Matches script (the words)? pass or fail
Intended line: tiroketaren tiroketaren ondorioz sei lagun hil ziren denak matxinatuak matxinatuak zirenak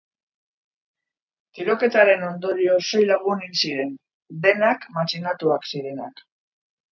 fail